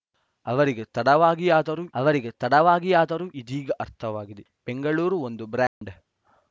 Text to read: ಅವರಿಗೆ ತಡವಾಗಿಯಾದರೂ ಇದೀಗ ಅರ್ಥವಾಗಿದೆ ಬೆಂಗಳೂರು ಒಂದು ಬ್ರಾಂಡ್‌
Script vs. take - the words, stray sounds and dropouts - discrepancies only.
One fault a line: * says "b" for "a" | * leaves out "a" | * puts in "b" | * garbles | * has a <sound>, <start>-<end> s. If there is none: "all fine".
* puts in "ಅವರಿಗೆ ತಡವಾಗಿಯಾದರೂ"
* has a dropout, 5.7-5.8 s